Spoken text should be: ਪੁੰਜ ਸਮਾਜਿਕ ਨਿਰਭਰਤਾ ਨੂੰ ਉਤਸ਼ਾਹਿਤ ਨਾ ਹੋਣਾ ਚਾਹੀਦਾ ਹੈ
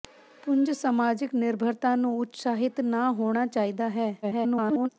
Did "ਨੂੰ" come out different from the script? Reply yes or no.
no